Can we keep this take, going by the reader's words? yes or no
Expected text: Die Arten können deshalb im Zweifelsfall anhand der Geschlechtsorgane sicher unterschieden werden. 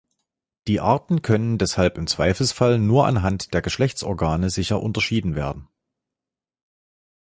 no